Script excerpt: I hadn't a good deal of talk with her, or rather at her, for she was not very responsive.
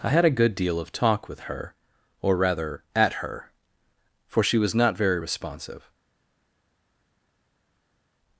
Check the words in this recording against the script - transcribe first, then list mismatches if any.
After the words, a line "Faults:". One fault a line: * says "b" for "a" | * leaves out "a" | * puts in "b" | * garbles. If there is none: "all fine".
I had a good deal of talk with her, or rather at her, for she was not very responsive.
Faults:
* says "had" for "hadn't"